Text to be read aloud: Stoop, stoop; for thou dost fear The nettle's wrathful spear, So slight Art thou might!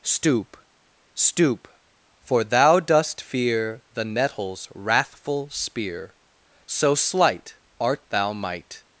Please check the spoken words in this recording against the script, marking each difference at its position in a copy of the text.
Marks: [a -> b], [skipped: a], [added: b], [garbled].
Stoop, stoop; for thou dost fear The nettle's wrathful spear, So slight Art thou might!